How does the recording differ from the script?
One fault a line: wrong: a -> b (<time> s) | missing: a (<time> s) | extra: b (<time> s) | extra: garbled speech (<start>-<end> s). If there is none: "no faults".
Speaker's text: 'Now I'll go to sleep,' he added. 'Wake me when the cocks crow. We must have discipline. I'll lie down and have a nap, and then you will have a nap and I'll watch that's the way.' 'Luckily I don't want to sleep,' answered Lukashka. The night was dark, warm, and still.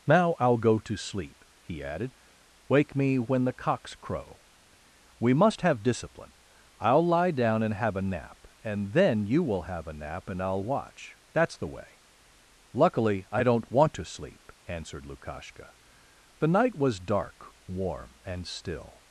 no faults